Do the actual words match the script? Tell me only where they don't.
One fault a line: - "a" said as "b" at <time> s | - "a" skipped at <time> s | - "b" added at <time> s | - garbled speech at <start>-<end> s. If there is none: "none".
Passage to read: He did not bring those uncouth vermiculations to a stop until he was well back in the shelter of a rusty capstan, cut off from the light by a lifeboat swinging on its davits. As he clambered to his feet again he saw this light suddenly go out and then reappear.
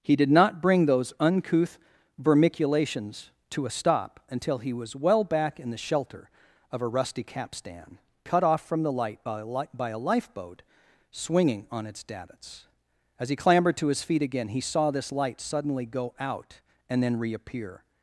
- "li by a" added at 9.4 s